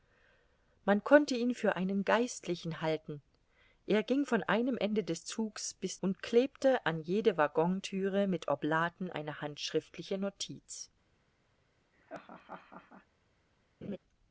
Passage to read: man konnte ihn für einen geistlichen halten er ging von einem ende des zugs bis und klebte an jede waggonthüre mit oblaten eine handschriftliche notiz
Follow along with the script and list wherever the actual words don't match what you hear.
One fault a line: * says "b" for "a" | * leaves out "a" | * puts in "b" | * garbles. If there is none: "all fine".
all fine